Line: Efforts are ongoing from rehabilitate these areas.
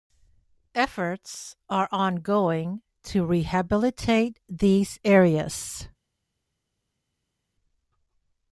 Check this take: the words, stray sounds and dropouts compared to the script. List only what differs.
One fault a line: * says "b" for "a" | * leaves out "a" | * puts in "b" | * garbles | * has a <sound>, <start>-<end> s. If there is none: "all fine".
* says "to" for "from"